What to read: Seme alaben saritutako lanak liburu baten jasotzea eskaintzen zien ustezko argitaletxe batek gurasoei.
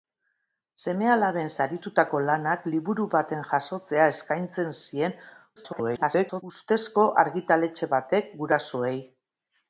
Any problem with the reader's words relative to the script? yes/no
yes